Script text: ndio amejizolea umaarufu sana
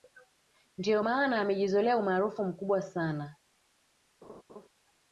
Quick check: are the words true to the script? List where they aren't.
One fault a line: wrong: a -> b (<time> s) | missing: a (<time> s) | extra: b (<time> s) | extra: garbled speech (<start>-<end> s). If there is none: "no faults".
extra: maana (1.0 s)
extra: mkubwa (2.4 s)